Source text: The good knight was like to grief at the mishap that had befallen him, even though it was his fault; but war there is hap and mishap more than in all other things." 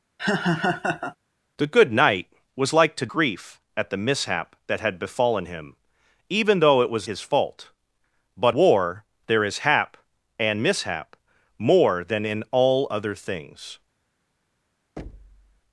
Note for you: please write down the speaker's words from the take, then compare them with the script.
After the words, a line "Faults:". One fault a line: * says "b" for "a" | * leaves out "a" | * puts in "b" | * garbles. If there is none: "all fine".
The good knight was like to grief at the mishap that had befallen him, even though it was his fault; but war there is hap and mishap more than in all other things."
Faults:
all fine